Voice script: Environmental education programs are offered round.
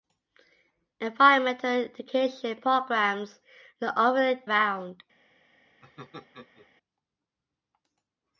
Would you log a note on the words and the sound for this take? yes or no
yes